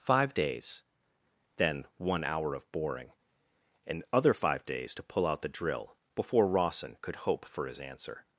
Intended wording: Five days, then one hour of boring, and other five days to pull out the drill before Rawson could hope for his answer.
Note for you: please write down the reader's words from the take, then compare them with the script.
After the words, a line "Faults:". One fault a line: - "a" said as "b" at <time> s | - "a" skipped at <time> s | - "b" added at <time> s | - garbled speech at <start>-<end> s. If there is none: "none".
Five days, then one hour of boring, and other five days to pull out the drill before Rawson could hope for his answer.
Faults:
none